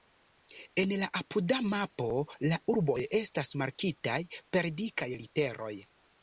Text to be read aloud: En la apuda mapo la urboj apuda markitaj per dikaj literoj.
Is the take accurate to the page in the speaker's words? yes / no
no